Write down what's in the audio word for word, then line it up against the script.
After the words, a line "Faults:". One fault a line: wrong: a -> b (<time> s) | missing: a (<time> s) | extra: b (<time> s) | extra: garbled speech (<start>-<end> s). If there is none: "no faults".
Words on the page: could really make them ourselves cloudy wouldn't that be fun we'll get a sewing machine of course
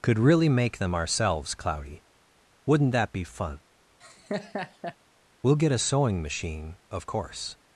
could really make them ourselves cloudy wouldn't that be fun we'll get a sewing machine of course
Faults:
no faults